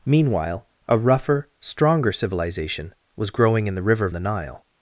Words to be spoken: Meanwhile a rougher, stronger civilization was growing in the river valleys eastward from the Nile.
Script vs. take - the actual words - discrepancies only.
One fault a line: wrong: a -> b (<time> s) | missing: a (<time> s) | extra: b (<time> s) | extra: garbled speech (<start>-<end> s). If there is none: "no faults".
missing: valleys eastward from (4.1 s)